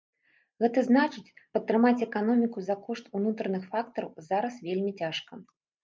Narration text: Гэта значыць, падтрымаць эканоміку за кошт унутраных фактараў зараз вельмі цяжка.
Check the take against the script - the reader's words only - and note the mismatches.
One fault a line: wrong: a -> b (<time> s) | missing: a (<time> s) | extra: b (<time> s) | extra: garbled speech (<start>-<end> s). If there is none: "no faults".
no faults